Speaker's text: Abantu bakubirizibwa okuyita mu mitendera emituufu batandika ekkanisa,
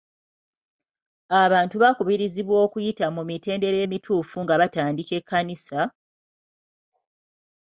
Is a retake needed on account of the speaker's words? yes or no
yes